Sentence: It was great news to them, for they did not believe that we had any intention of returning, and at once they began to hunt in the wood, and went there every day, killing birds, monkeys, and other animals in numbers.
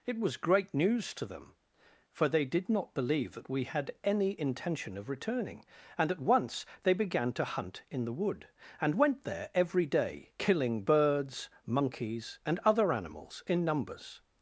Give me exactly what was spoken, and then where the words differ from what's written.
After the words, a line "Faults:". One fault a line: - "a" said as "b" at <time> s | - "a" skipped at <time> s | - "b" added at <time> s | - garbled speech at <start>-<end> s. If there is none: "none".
It was great news to them, for they did not believe that we had any intention of returning, and at once they began to hunt in the wood, and went there every day, killing birds, monkeys, and other animals in numbers.
Faults:
none